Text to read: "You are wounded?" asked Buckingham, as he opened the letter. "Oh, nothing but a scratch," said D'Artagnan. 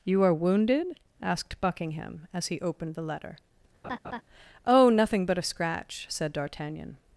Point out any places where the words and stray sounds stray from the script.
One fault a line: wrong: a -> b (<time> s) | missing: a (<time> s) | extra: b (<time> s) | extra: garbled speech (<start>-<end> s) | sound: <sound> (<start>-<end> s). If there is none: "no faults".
sound: laugh (3.8-4.2 s)